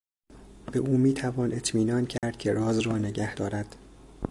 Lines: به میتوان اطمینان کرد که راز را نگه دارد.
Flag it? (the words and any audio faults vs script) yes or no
yes